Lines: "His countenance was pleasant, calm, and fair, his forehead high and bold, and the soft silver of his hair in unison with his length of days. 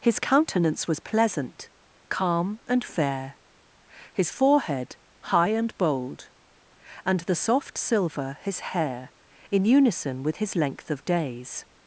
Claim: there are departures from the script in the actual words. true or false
true